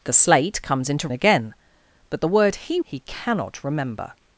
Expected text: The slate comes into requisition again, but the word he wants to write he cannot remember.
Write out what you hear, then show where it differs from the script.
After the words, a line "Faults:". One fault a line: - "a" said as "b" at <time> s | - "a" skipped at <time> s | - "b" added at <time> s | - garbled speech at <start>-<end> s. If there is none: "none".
The slate comes into again, but the word he he cannot remember.
Faults:
- "requisition" skipped at 1.1 s
- "wants to write" skipped at 2.8 s